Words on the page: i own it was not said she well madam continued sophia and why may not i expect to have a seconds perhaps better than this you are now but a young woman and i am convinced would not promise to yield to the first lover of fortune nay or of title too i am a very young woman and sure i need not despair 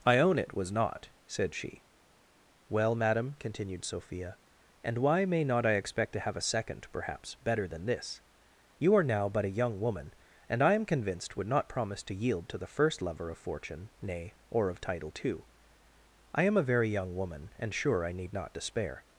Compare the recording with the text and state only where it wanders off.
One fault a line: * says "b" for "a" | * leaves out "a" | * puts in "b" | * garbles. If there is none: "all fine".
* says "second" for "seconds"